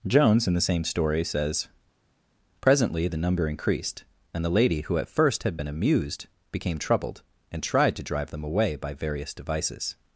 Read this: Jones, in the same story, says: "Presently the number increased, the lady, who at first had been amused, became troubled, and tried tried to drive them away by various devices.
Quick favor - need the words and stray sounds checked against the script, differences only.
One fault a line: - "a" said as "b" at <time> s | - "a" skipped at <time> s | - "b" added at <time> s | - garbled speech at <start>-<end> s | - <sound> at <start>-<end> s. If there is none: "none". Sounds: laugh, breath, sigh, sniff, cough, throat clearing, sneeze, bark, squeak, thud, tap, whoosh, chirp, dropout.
- "and" added at 4.3 s
- "tried" skipped at 8.0 s